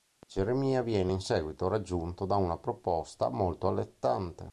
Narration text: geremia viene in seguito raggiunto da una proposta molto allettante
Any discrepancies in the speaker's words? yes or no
no